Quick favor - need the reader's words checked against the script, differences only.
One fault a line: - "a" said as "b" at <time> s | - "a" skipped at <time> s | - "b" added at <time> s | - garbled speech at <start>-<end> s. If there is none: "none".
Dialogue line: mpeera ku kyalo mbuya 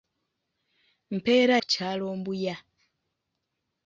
none